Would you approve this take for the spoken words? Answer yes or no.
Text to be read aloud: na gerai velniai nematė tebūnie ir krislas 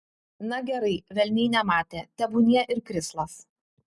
yes